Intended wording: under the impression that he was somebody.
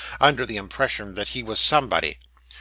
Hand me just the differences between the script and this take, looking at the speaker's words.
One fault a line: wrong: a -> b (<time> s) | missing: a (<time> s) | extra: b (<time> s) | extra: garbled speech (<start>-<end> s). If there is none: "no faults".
no faults